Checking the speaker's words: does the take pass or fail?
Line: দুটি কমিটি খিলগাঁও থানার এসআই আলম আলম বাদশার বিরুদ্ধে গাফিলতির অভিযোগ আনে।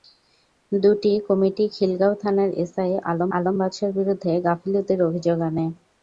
pass